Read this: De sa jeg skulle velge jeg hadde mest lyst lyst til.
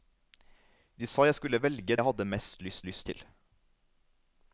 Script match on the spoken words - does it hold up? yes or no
yes